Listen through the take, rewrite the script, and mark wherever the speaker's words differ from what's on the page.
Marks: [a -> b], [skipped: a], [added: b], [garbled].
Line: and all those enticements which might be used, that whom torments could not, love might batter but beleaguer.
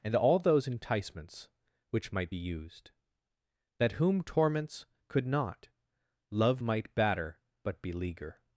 and all those enticements which might be used, that whom torments could not, love might batter but beleaguer.